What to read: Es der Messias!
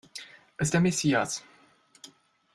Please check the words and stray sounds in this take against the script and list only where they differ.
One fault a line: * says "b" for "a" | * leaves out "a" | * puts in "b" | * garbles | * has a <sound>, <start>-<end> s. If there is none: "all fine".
all fine